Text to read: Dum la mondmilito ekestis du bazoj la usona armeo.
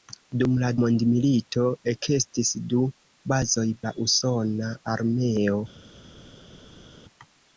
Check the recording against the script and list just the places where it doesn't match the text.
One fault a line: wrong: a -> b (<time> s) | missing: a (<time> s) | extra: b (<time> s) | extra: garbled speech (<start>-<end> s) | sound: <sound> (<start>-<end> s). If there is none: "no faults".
no faults